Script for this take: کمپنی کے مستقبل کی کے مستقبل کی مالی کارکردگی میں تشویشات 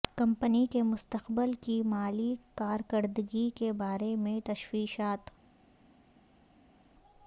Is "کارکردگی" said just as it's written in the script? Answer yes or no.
no